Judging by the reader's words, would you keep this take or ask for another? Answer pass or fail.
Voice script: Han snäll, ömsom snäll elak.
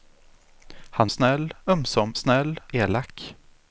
pass